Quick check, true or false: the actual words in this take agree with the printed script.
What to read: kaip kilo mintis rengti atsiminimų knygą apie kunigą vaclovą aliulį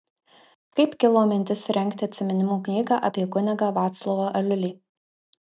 true